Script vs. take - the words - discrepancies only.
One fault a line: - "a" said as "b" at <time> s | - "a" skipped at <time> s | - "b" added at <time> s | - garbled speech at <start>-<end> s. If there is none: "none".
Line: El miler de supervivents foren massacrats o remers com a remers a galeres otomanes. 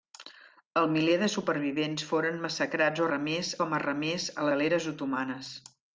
none